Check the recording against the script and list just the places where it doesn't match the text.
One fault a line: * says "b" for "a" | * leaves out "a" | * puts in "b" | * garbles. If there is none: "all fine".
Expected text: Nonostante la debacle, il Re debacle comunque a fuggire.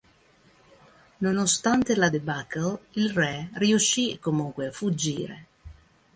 * says "riuscì" for "debacle"